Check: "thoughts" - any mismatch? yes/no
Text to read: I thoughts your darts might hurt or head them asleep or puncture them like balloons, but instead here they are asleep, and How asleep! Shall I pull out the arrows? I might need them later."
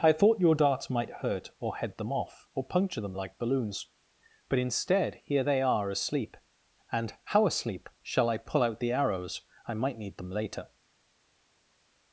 yes